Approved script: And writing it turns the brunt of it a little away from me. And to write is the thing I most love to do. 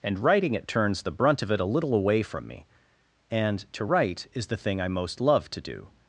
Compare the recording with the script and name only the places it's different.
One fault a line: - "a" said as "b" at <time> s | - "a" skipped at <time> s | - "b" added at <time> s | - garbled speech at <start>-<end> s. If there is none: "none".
none